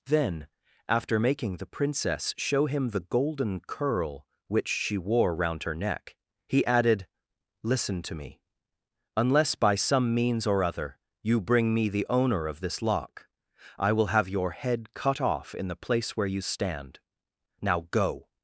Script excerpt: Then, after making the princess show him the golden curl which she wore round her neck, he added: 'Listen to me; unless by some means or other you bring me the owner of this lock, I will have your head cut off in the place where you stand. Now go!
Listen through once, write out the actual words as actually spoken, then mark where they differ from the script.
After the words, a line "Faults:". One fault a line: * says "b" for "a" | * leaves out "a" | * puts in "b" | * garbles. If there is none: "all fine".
Then, after making the princess show him the golden curl which she wore round her neck, he added: 'Listen to me; unless by some means or other you bring me the owner of this lock, I will have your head cut off in the place where you stand. Now go!
Faults:
all fine